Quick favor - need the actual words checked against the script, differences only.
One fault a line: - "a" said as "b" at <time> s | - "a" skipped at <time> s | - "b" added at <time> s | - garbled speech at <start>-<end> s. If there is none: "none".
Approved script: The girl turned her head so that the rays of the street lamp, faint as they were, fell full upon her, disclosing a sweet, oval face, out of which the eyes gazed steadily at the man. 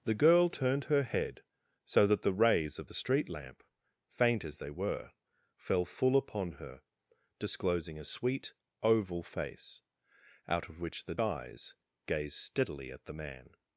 none